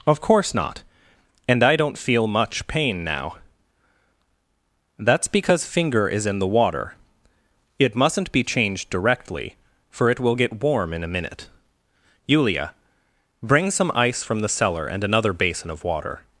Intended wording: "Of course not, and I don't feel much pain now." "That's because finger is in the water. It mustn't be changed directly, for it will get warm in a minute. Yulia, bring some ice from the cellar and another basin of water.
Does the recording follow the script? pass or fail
pass